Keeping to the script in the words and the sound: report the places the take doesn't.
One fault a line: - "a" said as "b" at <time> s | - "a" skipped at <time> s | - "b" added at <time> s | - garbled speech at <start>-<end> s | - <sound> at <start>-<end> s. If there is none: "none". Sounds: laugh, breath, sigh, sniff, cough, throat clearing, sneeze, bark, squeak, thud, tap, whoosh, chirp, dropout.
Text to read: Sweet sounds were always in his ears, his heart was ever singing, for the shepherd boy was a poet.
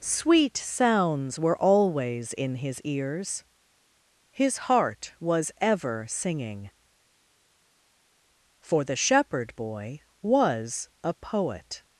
none